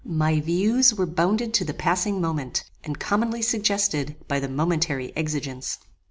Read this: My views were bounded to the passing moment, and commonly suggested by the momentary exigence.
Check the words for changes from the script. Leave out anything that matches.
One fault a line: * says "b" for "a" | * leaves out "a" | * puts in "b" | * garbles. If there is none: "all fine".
all fine